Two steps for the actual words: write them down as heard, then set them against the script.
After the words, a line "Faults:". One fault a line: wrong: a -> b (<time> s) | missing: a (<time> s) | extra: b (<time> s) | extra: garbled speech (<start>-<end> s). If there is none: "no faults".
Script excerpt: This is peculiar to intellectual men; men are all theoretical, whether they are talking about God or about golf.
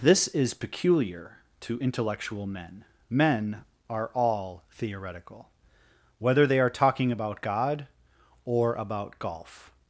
This is peculiar to intellectual men; men are all theoretical, whether they are talking about God or about golf.
Faults:
no faults